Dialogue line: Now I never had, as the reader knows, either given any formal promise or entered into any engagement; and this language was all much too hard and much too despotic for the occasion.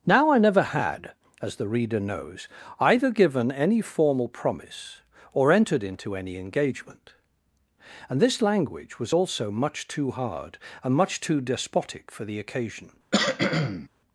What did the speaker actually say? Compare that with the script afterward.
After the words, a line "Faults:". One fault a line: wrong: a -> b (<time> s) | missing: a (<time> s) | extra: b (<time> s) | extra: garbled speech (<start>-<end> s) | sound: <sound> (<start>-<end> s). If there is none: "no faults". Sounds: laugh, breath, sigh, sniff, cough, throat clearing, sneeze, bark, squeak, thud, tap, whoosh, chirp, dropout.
Now I never had, as the reader knows, either given any formal promise or entered into any engagement; and this language was also much too hard and much too despotic for the occasion.
Faults:
wrong: all -> also (9.1 s)
sound: cough (13.1-13.9 s)